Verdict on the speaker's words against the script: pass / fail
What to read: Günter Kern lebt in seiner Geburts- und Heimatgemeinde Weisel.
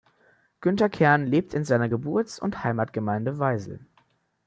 pass